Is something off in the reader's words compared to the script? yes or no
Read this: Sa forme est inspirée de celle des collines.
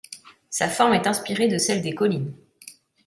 no